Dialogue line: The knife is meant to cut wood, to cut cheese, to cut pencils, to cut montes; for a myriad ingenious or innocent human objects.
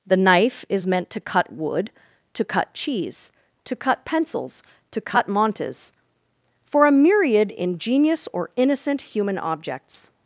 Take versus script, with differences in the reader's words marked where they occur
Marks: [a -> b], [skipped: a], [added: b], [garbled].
The knife is meant to cut wood, to cut cheese, to cut pencils, to cut montes; for a myriad ingenious or innocent human objects.